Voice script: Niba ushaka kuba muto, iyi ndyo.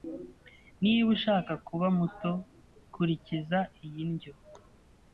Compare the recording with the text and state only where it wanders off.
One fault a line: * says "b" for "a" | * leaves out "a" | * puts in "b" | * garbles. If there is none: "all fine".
* puts in "kurikiza"